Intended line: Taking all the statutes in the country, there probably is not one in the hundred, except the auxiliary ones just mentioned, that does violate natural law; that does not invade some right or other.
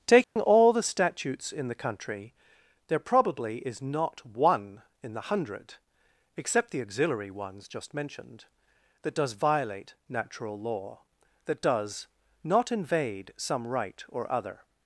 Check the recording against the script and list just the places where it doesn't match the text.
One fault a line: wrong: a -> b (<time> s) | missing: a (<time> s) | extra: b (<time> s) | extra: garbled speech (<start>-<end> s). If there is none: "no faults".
no faults